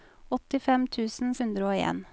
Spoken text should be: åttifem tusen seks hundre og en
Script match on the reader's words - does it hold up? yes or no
no